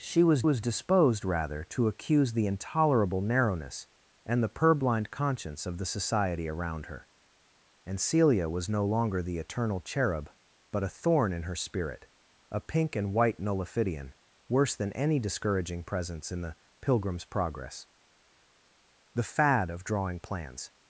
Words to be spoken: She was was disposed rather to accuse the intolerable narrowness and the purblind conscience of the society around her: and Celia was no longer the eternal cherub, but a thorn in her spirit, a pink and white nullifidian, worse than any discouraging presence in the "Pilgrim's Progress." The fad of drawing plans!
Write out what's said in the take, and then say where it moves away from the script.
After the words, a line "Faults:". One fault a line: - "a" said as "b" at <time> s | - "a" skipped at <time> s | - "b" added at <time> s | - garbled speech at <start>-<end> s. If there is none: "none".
She was was disposed rather to accuse the intolerable narrowness and the purblind conscience of the society around her: and Celia was no longer the eternal cherub, but a thorn in her spirit, a pink and white nullifidian, worse than any discouraging presence in the "Pilgrim's Progress." The fad of drawing plans!
Faults:
none